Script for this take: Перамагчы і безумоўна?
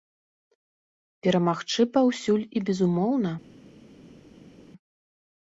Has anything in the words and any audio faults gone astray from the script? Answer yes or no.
yes